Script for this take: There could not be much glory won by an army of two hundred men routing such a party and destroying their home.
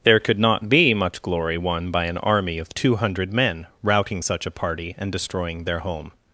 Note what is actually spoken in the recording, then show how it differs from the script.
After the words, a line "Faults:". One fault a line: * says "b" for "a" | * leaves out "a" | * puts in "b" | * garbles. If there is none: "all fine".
There could not be much glory won by an army of two hundred men routing such a party and destroying their home.
Faults:
all fine